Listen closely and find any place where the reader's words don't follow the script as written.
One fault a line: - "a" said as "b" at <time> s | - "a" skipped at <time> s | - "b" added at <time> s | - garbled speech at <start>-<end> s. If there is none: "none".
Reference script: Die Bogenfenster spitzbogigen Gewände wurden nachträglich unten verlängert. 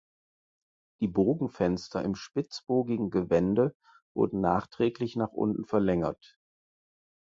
- "im" added at 2.0 s
- "nach" added at 5.2 s